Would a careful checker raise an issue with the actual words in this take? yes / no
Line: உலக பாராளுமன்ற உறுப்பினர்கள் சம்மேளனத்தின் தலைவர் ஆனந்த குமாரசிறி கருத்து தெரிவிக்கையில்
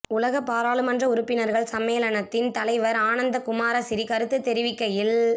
no